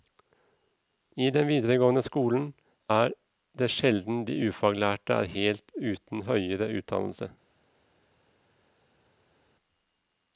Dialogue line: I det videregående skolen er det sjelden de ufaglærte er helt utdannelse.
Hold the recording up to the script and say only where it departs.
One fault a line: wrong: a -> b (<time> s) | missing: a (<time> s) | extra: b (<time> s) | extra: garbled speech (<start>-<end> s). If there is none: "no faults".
wrong: det -> den (1.4 s)
extra: uten høyere (5.9 s)